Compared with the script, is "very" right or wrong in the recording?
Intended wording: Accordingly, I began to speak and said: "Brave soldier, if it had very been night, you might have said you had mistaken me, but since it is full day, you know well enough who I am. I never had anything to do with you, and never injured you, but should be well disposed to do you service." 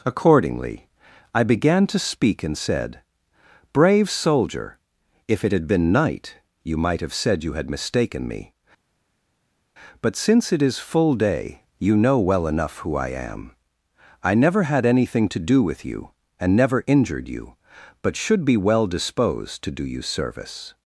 wrong